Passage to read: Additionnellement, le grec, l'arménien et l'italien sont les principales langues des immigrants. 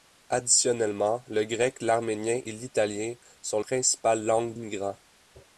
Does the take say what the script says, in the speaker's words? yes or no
no